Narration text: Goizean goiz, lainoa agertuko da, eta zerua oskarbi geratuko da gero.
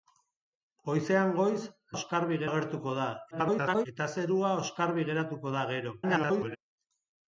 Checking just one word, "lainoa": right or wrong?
wrong